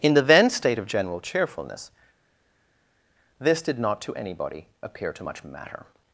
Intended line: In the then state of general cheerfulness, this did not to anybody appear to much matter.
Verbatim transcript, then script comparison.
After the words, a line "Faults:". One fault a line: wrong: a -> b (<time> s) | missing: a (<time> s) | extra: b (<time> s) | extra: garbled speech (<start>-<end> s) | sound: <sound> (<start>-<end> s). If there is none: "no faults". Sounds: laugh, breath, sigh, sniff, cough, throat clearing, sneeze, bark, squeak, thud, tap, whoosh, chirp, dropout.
In the then state of general cheerfulness, this did not to anybody appear to much matter.
Faults:
no faults